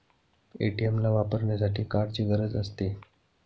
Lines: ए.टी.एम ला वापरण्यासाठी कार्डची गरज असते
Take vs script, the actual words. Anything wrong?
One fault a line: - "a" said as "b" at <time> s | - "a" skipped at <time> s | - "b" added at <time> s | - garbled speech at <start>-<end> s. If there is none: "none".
none